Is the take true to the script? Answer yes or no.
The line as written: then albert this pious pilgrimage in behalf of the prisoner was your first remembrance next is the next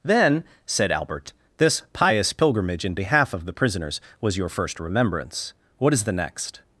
no